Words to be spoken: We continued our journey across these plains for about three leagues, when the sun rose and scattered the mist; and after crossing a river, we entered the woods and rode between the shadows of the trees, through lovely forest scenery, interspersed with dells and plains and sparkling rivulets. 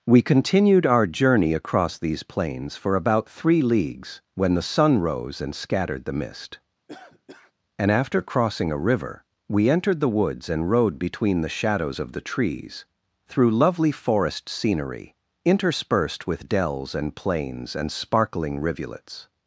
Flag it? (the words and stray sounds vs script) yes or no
yes